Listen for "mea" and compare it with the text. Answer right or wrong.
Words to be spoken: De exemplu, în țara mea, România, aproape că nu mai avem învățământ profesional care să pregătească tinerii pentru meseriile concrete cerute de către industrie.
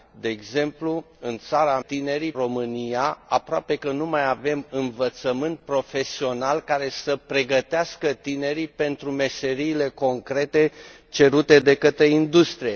wrong